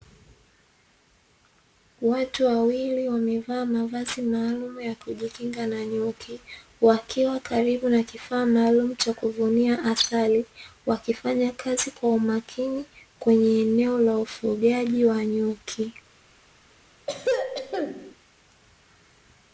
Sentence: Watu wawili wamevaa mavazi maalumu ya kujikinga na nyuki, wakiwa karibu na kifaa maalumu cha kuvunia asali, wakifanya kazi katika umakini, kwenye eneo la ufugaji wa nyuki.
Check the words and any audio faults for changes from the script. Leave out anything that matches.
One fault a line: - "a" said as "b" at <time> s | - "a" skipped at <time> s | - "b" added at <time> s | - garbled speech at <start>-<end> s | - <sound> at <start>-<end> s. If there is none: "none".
- "katika" said as "kwa" at 11.9 s
- throat clearing at 17.1-18.1 s